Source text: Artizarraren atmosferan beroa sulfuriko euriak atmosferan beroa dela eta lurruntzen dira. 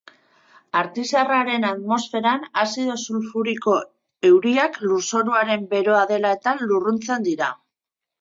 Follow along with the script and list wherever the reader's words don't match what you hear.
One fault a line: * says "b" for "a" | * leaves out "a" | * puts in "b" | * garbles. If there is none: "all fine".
* says "azido" for "beroa"
* says "lurzoruaren" for "atmosferan"